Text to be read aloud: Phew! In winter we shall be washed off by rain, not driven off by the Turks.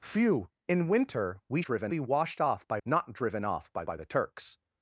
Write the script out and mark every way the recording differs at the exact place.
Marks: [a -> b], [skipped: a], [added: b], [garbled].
Phew! In winter we [shall -> driven] be washed off by [skipped: rain,] not driven off by [added: by] the Turks.